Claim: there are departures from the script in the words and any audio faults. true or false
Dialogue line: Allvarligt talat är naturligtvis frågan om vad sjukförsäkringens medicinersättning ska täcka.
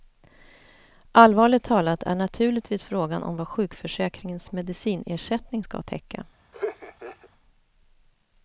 true